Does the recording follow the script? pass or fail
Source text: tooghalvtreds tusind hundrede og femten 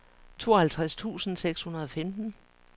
fail